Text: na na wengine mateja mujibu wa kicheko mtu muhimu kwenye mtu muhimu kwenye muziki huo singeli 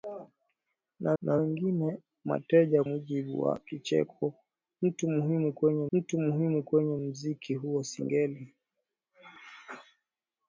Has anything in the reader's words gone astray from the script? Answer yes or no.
no